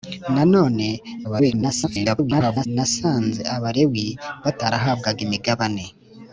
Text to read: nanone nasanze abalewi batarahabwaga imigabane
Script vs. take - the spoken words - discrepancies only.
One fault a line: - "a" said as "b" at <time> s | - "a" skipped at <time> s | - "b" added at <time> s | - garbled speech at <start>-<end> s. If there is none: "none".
- garbled speech at 1.2-2.7 s